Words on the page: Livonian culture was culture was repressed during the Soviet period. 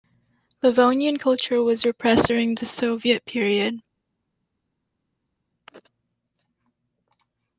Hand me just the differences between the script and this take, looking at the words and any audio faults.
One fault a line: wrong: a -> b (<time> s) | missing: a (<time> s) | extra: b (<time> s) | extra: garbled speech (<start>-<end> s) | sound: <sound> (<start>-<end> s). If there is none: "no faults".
missing: culture was (1.9 s)